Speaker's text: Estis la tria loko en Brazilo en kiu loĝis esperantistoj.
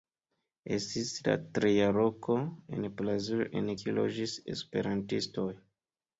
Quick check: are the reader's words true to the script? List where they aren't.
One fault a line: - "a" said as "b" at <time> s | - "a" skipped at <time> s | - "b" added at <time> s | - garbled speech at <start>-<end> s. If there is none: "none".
none